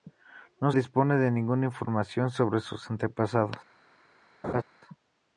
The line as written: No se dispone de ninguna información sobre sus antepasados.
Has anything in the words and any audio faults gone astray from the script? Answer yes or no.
yes